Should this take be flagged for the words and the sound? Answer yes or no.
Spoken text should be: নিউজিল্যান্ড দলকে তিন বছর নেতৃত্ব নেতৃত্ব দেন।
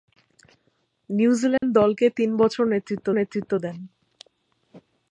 yes